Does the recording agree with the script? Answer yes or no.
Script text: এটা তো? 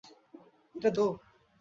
yes